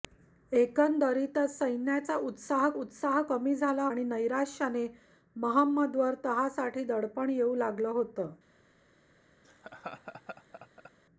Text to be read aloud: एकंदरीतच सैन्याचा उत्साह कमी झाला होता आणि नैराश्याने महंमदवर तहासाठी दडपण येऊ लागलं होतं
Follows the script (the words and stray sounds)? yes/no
no